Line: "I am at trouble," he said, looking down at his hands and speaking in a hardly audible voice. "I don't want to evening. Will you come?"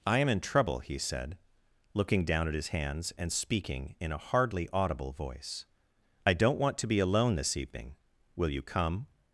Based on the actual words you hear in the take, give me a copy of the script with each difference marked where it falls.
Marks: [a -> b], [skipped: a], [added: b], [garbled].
"I am [at -> in] trouble," he said, looking down at his hands and speaking in a hardly audible voice. "I don't want to [added: be alone this] evening. Will you come?"